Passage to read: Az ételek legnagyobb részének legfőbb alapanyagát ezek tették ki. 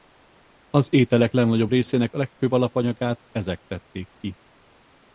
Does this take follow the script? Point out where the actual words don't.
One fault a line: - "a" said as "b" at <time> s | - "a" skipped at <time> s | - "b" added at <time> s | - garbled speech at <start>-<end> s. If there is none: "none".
none